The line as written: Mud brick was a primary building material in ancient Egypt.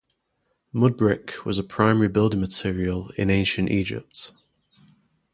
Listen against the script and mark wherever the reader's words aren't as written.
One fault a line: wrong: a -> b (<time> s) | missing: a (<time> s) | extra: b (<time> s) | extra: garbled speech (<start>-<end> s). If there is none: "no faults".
no faults